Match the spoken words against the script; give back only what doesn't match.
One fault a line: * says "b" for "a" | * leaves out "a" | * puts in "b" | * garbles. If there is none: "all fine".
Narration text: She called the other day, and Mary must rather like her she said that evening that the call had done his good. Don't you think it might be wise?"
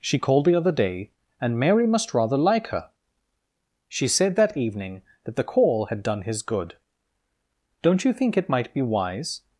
all fine